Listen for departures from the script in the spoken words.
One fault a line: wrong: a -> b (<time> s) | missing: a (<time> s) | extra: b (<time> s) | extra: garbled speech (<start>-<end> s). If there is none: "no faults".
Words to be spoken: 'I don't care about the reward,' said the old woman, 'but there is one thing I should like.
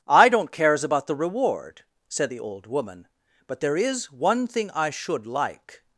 wrong: care -> cares (0.5 s)